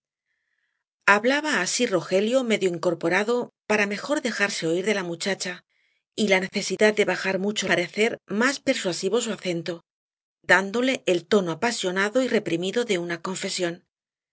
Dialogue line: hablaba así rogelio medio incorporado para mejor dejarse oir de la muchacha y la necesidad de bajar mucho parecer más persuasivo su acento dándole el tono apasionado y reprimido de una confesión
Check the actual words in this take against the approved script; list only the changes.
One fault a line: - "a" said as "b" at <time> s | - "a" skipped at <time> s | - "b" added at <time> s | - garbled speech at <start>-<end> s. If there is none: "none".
none